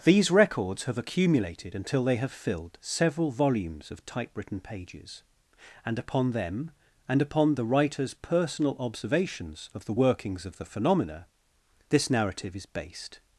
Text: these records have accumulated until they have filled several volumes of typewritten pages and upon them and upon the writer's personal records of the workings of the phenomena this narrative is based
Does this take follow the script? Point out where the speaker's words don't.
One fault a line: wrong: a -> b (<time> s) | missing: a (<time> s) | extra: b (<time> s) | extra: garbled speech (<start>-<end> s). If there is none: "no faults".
wrong: records -> observations (8.8 s)